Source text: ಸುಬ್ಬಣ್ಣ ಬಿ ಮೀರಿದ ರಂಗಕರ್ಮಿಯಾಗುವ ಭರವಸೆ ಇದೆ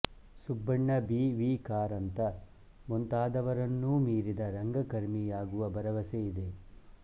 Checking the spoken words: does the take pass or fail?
fail